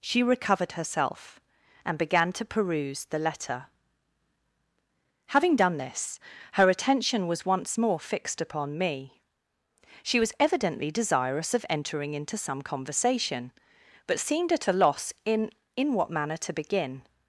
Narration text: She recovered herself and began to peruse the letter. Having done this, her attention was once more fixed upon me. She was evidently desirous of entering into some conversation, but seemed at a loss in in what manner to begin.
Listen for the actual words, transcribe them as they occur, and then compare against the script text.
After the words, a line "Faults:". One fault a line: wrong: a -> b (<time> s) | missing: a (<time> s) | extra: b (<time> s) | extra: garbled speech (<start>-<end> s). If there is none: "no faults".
She recovered herself and began to peruse the letter. Having done this, her attention was once more fixed upon me. She was evidently desirous of entering into some conversation, but seemed at a loss in in what manner to begin.
Faults:
no faults